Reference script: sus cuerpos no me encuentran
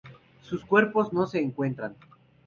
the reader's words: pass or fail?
fail